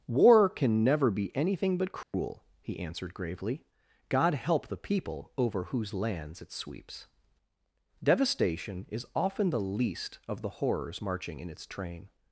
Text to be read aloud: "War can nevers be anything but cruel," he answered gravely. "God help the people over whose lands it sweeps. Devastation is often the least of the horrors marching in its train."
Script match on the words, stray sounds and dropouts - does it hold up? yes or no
no